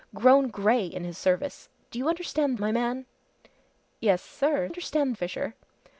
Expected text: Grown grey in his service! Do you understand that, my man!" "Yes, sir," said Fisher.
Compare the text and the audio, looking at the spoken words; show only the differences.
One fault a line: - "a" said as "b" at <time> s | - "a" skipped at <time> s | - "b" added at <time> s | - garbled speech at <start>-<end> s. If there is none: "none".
- "that" skipped at 2.6 s
- "said" said as "understand" at 4.7 s